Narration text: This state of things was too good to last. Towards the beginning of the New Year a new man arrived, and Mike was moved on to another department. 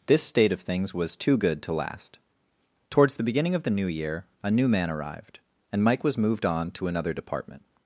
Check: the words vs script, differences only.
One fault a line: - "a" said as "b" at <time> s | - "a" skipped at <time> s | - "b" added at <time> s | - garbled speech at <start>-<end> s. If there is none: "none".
none